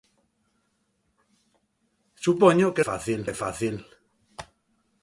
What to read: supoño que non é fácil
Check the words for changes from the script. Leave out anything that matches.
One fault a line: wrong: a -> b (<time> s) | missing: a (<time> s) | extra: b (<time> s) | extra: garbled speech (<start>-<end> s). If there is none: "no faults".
wrong: non -> fácil (2.9 s)